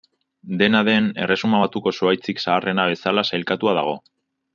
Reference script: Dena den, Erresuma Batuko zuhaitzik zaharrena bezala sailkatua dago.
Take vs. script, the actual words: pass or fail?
pass